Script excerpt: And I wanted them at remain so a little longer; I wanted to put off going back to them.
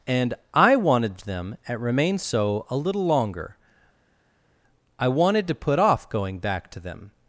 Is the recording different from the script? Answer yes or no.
no